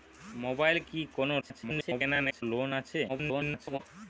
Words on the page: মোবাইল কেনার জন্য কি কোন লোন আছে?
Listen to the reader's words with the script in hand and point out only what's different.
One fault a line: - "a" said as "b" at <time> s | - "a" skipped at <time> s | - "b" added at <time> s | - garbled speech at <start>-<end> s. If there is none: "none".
- "কেনার জন্য" skipped at 0.8 s
- garbled speech at 1.4-2.4 s
- garbled speech at 3.1-3.8 s